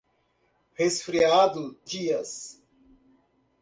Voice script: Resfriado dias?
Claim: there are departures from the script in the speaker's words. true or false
false